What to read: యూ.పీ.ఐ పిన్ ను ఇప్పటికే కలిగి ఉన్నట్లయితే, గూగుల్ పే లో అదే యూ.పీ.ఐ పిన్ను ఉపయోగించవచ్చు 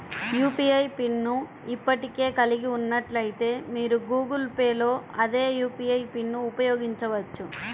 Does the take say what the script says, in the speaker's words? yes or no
no